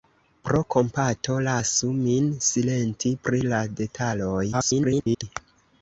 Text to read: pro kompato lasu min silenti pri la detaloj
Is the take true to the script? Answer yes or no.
no